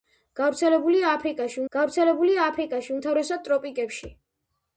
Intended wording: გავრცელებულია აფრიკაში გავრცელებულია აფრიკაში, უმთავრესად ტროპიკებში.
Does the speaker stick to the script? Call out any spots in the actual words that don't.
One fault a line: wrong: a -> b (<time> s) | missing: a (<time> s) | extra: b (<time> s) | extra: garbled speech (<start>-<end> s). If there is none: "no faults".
no faults